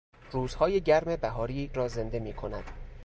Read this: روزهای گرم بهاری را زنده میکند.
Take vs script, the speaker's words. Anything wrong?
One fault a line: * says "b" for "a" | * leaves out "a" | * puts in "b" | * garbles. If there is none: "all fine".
all fine